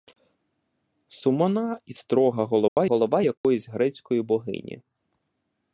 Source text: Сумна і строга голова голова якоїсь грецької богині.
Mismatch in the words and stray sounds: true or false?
true